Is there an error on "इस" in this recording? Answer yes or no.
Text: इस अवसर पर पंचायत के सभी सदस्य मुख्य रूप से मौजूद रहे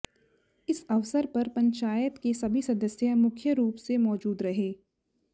no